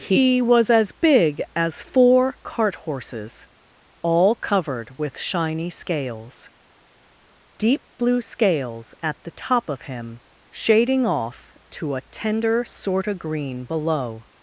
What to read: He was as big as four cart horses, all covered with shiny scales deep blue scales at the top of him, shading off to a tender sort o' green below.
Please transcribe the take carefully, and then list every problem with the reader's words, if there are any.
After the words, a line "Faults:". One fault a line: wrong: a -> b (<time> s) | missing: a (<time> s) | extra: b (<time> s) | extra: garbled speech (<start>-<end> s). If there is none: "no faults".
He was as big as four cart horses, all covered with shiny scales deep blue scales at the top of him, shading off to a tender sort o' green below.
Faults:
no faults